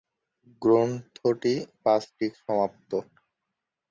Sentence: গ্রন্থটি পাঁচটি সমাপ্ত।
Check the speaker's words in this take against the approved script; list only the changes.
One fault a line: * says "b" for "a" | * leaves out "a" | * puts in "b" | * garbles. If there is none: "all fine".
all fine